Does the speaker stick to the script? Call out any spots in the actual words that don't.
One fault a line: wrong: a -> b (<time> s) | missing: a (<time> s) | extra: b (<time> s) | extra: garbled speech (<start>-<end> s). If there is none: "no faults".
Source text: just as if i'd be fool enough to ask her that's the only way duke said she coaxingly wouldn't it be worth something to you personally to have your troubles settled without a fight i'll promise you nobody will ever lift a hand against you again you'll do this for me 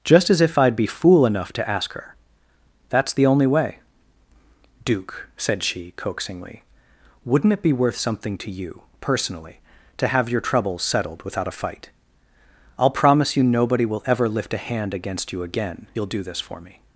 no faults